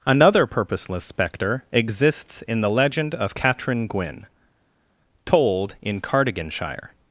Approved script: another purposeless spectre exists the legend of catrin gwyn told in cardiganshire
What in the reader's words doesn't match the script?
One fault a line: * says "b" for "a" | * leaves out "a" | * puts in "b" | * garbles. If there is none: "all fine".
* puts in "in"